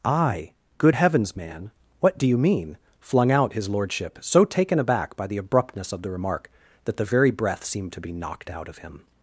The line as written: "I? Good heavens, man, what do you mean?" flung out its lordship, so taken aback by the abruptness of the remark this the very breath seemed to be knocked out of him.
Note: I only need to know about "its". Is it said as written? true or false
false